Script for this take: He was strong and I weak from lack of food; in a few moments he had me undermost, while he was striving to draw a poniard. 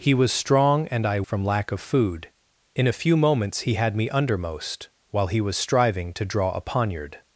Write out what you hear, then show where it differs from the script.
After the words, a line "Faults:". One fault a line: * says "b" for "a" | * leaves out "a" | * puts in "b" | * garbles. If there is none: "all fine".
He was strong and I from lack of food; in a few moments he had me undermost, while he was striving to draw a poniard.
Faults:
* leaves out "weak"